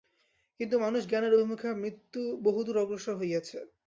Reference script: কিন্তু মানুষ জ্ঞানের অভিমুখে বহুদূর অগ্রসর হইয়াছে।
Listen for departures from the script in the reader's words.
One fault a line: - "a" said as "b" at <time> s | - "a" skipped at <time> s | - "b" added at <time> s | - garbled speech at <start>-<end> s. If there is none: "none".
none